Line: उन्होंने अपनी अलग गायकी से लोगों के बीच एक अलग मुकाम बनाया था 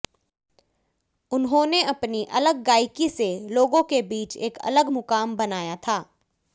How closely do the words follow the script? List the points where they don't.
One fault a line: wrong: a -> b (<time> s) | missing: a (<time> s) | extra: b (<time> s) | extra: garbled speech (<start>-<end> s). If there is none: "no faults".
no faults